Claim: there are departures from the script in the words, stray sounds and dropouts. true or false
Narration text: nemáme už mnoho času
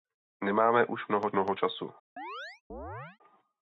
true